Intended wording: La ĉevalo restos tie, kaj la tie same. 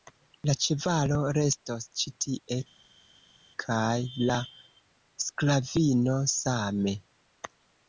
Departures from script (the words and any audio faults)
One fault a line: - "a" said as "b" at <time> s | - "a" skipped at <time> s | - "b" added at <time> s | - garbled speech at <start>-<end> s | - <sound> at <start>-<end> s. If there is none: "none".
- "ĉi" added at 2.0 s
- "tie" said as "sklavino" at 5.3 s